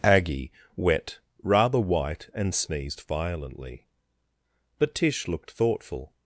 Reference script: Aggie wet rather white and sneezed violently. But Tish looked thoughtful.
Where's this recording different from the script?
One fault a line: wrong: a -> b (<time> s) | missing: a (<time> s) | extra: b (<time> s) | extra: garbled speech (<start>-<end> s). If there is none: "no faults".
no faults